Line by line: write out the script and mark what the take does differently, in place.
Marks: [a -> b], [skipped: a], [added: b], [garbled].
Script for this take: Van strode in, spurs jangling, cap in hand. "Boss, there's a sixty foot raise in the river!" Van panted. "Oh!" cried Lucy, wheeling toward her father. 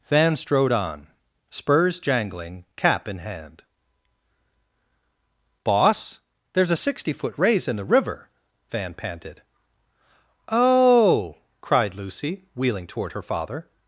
Van strode [in, -> on] spurs jangling, cap in hand. "Boss, there's a sixty foot raise in the river!" Van panted. "Oh!" cried Lucy, wheeling toward her father.